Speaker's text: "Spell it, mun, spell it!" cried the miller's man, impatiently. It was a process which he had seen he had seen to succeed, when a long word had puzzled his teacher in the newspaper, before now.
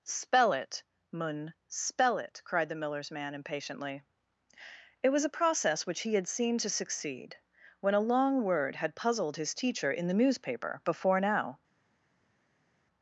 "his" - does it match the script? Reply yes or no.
yes